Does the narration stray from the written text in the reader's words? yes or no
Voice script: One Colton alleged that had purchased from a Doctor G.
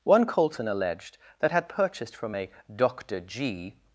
no